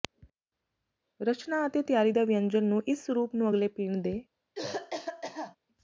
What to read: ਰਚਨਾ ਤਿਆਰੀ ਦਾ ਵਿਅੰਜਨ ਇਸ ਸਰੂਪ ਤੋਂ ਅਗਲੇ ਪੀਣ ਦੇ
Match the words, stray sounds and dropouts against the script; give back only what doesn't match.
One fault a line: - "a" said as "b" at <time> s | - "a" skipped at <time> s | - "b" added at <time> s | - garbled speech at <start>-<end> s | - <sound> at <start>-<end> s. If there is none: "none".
- "ਅਤੇ" added at 1.7 s
- "ਨੂੰ" added at 2.6 s
- "ਤੋਂ" said as "ਨੂੰ" at 3.4 s
- cough at 4.5-5.6 s